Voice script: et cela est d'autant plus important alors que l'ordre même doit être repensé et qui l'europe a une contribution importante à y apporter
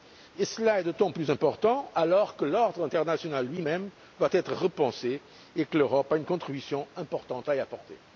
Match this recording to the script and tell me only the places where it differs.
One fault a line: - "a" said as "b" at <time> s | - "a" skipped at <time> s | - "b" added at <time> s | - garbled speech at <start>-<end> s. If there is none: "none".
- "international lui" added at 2.8 s
- "qui" said as "que" at 5.6 s